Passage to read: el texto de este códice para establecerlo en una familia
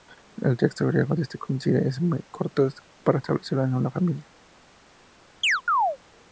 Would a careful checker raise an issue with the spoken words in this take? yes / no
yes